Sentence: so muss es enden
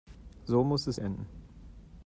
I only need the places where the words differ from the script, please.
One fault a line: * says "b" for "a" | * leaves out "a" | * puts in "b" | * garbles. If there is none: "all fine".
all fine